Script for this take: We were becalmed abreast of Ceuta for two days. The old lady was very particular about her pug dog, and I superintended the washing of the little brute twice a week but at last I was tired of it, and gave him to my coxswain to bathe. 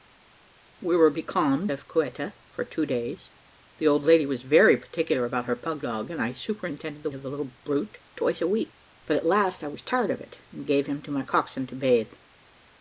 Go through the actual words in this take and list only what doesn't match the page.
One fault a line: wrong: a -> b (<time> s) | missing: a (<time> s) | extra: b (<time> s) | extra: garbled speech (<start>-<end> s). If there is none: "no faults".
missing: abreast (1.7 s)
missing: washing (7.1 s)